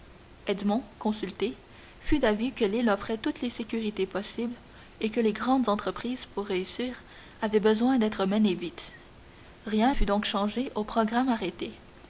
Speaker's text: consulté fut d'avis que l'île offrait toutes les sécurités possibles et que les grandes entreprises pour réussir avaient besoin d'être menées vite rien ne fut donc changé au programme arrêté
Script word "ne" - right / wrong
wrong